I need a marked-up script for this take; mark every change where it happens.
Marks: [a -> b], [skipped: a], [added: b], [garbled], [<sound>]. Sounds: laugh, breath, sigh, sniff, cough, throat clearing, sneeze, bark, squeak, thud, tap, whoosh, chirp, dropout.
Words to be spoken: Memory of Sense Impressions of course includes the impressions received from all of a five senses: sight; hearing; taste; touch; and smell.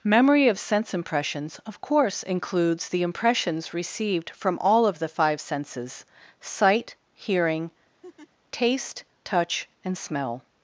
Memory of Sense Impressions of course includes the impressions received from all of [a -> the] five senses: sight; hearing; [laugh] taste; touch; and smell.